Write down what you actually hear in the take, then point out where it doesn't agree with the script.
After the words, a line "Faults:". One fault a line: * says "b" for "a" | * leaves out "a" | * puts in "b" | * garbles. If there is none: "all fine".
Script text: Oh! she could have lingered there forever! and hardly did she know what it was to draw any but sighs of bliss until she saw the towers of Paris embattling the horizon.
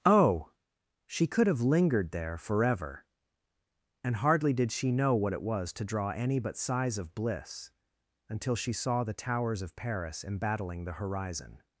Oh! she could have lingered there forever! and hardly did she know what it was to draw any but sighs of bliss until she saw the towers of Paris embattling the horizon.
Faults:
all fine